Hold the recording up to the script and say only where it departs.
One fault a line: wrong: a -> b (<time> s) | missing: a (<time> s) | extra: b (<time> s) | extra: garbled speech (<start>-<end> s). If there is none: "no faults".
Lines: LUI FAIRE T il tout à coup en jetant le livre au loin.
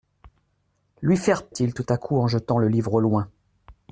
no faults